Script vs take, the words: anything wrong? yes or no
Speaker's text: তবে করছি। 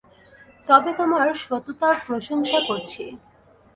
yes